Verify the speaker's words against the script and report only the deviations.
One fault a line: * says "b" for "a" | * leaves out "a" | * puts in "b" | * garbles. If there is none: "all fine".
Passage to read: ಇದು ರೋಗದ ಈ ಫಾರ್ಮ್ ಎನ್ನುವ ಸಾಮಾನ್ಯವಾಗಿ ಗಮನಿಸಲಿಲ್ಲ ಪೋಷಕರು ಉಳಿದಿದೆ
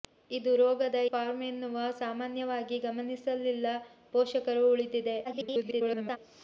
* leaves out "ಈ"
* garbles